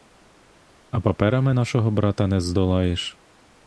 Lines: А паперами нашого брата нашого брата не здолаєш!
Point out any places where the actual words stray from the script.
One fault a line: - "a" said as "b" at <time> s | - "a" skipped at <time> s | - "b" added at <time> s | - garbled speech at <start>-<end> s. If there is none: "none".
- "нашого брата" skipped at 2.3 s